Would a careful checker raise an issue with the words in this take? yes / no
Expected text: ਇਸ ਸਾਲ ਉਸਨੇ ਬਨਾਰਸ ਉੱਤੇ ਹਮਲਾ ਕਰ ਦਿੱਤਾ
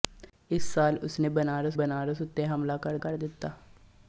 yes